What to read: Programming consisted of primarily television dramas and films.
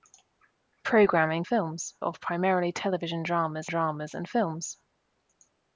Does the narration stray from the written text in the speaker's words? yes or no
yes